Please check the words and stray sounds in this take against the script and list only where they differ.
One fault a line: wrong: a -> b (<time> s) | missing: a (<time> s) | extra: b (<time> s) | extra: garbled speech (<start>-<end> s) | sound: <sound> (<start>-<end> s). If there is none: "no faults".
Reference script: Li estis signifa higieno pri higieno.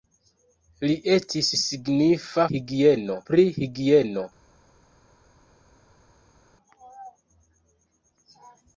no faults